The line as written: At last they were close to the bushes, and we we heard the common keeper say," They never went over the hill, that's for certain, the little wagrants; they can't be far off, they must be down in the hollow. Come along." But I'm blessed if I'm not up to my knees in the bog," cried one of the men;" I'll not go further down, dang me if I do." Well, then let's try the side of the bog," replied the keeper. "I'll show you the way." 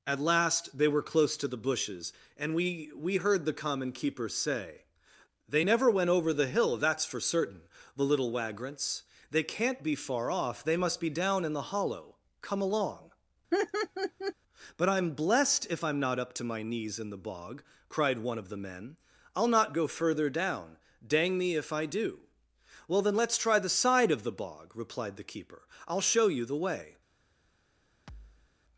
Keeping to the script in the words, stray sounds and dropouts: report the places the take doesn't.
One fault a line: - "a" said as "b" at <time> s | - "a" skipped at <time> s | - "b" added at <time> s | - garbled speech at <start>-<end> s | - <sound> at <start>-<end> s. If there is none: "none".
- laugh at 13.5-14.3 s
- thud at 28.1-28.5 s